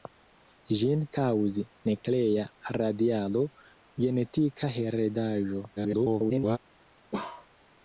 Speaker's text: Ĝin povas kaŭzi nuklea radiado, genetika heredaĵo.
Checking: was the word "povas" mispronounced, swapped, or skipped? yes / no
yes